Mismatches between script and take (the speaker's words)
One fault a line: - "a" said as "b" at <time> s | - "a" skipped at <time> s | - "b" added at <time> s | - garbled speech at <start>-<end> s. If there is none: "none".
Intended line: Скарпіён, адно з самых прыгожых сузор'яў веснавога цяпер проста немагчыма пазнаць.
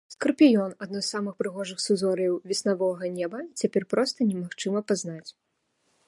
- "неба" added at 3.2 s